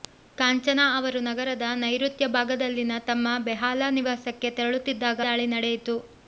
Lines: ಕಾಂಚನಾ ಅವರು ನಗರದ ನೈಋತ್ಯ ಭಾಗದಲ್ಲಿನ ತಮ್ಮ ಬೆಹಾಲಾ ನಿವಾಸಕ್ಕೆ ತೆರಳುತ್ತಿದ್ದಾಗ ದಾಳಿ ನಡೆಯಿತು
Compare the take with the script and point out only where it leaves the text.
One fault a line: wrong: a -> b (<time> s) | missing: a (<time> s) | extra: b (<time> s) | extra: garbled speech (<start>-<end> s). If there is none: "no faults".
no faults